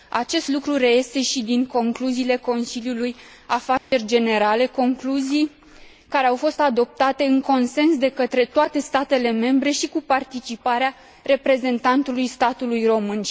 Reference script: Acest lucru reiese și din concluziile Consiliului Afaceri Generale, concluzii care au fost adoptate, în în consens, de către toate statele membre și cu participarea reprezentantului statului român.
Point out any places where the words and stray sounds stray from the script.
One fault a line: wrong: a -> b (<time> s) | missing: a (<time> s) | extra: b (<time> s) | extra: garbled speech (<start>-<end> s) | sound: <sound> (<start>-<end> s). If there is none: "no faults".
sound: dropout (3.8-3.9 s)
missing: în (7.4 s)